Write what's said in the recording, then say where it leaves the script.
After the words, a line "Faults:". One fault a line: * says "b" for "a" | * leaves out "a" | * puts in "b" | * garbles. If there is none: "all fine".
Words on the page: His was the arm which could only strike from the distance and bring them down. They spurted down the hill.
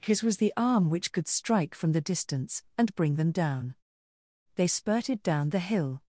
His was the arm which could strike from the distance and bring them down. They spurted down the hill.
Faults:
* leaves out "only"